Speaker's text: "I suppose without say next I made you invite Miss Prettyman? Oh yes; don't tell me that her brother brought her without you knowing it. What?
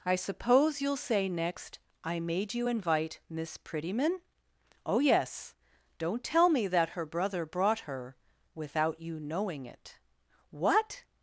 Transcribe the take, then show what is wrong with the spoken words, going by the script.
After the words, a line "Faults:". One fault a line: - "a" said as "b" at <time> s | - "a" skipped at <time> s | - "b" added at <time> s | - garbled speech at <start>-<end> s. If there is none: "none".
"I suppose you'll say next I made you invite Miss Prettyman? Oh yes; don't tell me that her brother brought her without you knowing it. What?
Faults:
- "without" said as "you'll" at 0.8 s